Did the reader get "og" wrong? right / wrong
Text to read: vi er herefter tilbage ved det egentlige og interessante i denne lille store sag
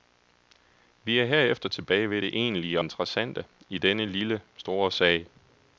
wrong